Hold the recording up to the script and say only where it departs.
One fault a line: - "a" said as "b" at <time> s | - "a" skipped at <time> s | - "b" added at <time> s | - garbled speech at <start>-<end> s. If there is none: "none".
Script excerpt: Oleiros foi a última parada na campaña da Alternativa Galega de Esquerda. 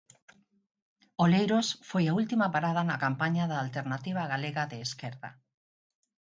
none